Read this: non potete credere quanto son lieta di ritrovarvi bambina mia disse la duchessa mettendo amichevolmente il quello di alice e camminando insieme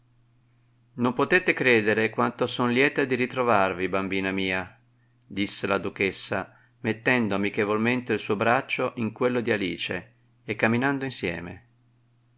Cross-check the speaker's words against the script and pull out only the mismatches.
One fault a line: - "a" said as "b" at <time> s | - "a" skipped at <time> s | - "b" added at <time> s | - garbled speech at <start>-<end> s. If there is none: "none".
- "suo braccio in" added at 8.2 s